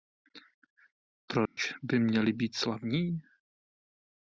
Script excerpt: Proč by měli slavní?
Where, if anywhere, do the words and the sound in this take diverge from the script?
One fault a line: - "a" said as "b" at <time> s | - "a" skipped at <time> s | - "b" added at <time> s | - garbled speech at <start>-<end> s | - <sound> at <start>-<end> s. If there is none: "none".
- dropout at 1.5-1.6 s
- "být" added at 2.3 s